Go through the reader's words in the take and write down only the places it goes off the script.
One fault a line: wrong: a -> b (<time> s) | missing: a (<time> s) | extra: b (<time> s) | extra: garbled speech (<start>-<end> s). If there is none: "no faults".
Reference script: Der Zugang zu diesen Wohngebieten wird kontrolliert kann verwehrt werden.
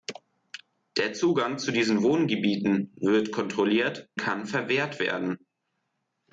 no faults